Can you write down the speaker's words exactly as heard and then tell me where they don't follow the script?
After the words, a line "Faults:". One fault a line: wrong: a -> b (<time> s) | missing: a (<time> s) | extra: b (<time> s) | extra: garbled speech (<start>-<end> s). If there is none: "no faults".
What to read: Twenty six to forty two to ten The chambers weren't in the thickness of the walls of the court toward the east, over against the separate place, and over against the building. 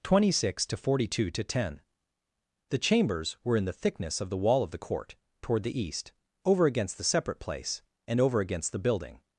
Twenty six to forty two to ten The chambers were in the thickness of the wall of the court toward the east, over against the separate place, and over against the building.
Faults:
wrong: weren't -> were (3.4 s)
wrong: walls -> wall (4.4 s)